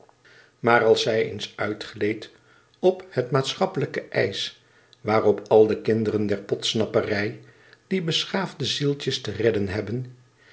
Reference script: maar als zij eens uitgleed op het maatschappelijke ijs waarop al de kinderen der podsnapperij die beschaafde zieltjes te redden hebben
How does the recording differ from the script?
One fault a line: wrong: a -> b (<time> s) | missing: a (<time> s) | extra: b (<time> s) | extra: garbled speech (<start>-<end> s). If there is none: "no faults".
no faults